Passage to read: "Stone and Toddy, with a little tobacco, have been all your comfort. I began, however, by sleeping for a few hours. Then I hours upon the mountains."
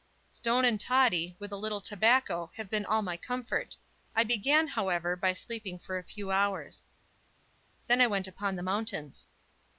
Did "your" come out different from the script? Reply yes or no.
yes